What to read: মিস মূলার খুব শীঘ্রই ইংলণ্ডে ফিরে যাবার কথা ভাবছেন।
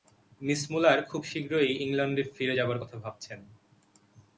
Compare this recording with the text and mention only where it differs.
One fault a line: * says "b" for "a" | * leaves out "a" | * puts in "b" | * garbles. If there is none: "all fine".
all fine